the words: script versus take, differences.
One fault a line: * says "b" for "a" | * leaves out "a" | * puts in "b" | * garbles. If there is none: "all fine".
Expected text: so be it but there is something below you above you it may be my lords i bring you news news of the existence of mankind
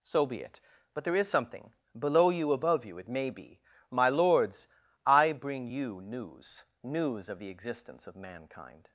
all fine